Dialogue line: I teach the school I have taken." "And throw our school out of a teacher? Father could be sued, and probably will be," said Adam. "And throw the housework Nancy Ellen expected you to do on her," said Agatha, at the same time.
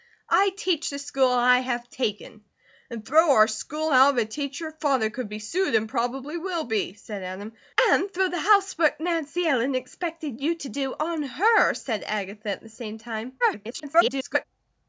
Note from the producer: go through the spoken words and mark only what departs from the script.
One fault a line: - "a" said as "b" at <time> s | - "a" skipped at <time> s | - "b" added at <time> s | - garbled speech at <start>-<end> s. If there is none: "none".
- garbled speech at 13.4-14.4 s